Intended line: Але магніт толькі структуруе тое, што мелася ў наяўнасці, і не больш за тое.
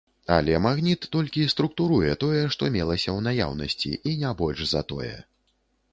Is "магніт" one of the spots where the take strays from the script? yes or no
no